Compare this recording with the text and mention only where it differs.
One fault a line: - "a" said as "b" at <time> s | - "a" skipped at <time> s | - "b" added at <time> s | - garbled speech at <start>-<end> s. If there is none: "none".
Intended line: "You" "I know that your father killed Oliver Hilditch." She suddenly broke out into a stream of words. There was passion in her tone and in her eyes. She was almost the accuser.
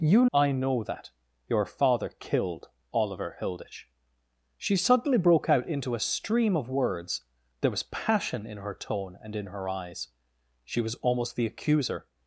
none